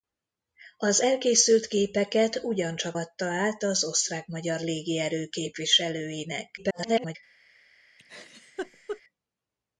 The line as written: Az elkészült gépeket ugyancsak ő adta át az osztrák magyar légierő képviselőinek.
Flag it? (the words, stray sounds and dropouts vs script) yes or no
yes